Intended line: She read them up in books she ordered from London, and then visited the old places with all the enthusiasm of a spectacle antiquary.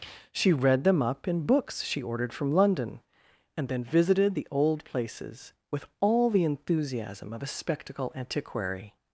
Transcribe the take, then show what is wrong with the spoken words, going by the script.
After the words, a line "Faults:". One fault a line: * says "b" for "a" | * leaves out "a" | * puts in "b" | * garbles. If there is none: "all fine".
She read them up in books she ordered from London, and then visited the old places with all the enthusiasm of a spectacle antiquary.
Faults:
all fine